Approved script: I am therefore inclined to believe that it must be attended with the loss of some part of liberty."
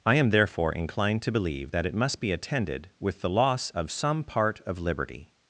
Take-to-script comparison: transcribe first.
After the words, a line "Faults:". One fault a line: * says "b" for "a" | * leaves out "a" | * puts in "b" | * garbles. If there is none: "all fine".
I am therefore inclined to believe that it must be attended with the loss of some part of liberty."
Faults:
all fine